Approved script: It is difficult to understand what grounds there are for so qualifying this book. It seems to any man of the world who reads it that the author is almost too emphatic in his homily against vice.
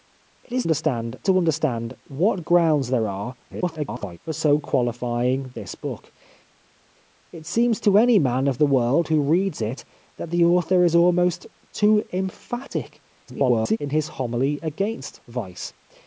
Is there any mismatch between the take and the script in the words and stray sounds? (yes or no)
yes